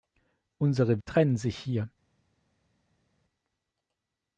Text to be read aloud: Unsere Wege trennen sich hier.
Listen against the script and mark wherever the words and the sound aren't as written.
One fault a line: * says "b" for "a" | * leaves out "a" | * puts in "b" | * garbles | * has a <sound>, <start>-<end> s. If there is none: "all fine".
* leaves out "Wege"